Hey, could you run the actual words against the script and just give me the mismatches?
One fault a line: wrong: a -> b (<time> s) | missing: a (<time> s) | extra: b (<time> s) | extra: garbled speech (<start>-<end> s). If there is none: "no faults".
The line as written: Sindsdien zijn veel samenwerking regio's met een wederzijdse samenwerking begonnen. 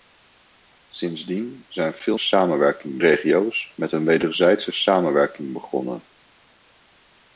no faults